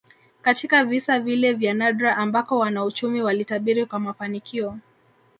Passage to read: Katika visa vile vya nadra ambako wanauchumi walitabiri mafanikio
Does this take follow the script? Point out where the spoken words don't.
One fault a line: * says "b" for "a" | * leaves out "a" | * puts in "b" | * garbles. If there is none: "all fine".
* puts in "kwa"